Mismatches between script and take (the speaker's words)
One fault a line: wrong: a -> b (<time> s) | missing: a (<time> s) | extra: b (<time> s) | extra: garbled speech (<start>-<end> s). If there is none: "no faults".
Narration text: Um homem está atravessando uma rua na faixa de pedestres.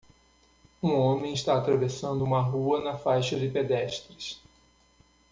no faults